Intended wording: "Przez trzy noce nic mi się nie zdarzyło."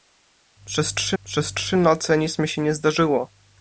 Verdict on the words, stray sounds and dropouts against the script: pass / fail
fail